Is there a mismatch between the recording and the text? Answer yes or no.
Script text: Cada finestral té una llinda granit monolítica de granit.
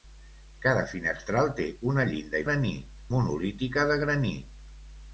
no